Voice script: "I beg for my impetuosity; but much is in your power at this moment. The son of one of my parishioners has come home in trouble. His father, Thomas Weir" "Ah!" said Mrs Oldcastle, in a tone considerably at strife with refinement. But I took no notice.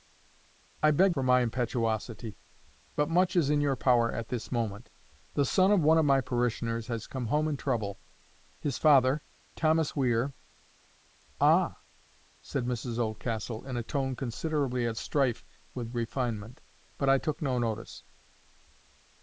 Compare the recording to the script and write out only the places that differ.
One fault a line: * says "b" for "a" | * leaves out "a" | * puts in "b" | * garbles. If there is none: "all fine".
all fine